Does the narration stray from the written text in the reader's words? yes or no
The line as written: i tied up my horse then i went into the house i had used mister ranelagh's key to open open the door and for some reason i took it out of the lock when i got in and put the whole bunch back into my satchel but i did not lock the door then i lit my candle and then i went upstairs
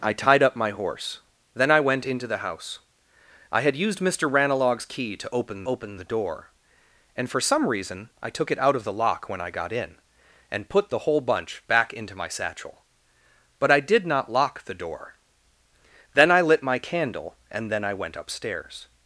no